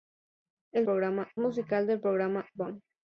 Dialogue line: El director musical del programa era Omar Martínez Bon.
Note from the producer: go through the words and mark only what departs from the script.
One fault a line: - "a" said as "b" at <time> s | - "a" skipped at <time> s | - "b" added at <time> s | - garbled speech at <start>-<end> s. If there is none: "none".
- "director" said as "programa" at 0.8 s
- "era Omar Martínez" skipped at 2.5 s